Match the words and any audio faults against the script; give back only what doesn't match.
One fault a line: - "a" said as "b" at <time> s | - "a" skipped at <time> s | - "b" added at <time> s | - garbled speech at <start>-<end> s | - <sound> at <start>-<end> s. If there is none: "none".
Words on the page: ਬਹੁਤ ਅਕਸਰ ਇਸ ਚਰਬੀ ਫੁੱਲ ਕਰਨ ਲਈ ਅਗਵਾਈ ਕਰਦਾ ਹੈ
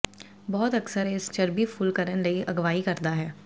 none